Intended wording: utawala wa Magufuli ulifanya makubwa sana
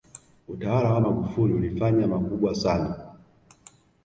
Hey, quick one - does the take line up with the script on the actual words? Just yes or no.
yes